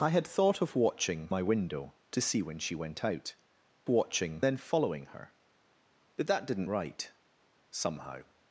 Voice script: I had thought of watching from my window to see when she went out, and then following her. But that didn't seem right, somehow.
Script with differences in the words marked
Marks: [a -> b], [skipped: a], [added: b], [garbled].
I had thought of watching [skipped: from] my window to see when she went out, [and -> watching] then following her. But that didn't [skipped: seem] right, somehow.